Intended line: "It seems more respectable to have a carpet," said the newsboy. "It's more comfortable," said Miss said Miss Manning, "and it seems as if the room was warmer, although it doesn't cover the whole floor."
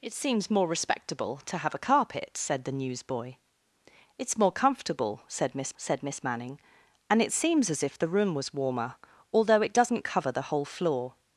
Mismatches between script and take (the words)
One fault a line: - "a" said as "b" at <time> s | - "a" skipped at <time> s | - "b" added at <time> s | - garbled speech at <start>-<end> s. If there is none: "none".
none